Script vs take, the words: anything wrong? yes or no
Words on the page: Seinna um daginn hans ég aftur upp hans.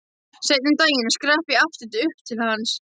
yes